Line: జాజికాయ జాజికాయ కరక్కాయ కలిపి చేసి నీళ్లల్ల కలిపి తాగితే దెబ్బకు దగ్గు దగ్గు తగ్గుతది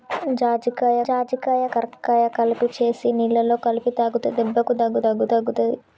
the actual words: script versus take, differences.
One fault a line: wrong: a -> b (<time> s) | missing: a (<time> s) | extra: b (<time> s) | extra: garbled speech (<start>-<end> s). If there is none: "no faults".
no faults